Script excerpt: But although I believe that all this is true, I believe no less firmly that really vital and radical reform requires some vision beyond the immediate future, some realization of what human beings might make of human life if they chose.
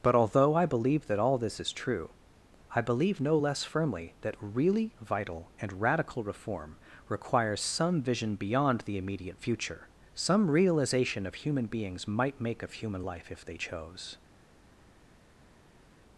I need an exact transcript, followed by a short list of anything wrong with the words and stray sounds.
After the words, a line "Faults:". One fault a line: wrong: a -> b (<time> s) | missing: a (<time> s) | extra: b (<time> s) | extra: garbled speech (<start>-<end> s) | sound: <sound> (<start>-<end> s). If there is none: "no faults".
But although I believe that all this is true, I believe no less firmly that really vital and radical reform requires some vision beyond the immediate future, some realization of human beings might make of human life if they chose.
Faults:
missing: what (11.4 s)